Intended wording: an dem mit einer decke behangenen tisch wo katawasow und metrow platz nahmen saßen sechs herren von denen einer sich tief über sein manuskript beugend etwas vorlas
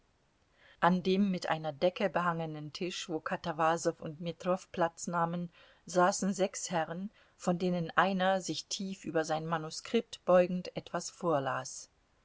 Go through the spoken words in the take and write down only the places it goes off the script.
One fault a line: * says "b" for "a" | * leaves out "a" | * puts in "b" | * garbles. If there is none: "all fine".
all fine